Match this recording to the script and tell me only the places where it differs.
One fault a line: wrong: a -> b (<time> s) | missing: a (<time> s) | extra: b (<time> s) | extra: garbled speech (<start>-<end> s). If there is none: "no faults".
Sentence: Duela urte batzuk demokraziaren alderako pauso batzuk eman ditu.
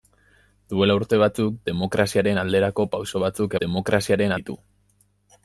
wrong: eman -> demokraziaren (3.6 s)